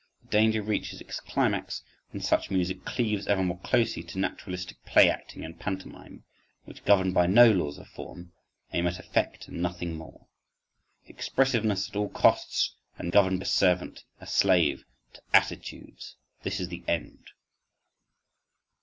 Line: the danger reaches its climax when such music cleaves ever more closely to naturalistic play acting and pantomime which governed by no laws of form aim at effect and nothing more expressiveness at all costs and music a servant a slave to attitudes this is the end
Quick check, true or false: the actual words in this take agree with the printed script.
false